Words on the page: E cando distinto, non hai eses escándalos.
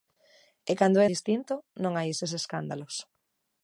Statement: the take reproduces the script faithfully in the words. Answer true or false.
true